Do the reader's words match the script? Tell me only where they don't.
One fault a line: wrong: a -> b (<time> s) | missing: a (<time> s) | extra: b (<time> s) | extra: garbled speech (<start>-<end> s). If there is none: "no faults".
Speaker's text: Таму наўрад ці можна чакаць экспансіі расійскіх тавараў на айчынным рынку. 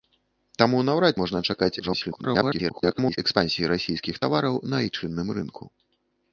missing: ці (1.2 s)
extra: garbled speech (1.8-3.2 s)